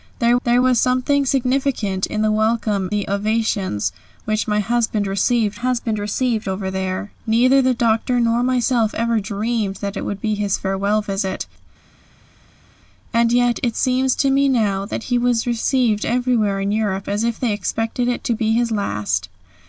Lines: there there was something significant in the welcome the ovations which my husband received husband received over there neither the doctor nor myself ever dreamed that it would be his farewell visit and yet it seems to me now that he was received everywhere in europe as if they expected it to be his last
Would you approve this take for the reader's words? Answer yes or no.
yes